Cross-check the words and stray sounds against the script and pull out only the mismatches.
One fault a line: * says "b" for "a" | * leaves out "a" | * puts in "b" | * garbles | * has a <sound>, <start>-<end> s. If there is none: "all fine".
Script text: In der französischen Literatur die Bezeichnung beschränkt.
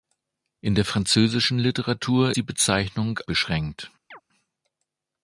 * has a chirp, 4.1-4.2 s